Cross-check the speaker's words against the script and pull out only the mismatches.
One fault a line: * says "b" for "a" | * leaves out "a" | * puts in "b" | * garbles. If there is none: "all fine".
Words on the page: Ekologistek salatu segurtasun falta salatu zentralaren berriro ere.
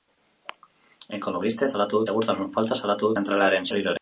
all fine